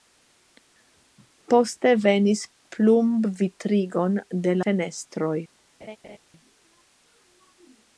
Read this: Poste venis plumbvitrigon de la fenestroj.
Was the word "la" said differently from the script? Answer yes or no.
yes